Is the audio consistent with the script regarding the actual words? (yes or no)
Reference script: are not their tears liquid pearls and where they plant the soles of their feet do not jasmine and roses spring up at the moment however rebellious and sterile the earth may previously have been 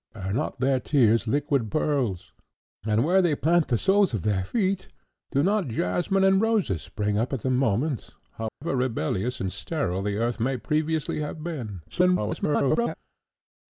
no